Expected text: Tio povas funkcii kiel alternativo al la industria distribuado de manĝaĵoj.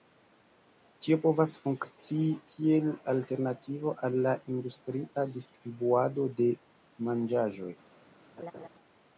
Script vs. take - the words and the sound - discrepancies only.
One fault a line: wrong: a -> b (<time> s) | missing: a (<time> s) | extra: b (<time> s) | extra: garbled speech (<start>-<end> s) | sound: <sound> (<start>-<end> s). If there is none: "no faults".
sound: laugh (8.4-8.7 s)